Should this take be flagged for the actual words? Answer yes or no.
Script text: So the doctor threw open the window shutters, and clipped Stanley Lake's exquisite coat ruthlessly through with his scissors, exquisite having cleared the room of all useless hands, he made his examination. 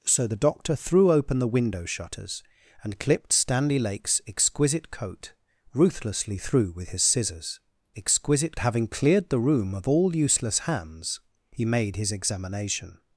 no